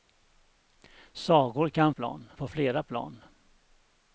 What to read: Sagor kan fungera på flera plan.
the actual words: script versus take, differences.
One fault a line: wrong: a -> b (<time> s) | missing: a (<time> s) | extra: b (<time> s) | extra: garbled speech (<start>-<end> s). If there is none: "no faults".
wrong: fungera -> plan (1.9 s)